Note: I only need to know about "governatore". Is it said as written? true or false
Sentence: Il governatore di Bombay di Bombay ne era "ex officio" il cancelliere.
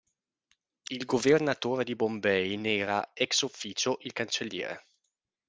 true